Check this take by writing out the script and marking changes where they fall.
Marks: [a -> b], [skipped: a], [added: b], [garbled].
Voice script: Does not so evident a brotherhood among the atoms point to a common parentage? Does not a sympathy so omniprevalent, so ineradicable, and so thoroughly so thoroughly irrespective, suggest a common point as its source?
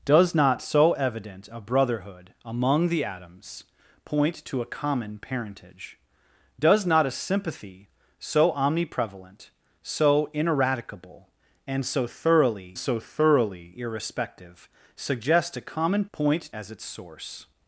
Does not so evident a brotherhood among the atoms point to a common parentage? Does not a sympathy so omniprevalent, so ineradicable, and so thoroughly so thoroughly irrespective, suggest a common point as its source?